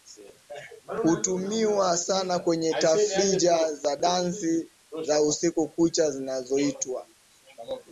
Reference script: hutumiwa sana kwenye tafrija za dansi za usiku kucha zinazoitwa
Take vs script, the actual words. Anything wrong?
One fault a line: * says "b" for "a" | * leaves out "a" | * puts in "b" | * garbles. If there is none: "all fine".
all fine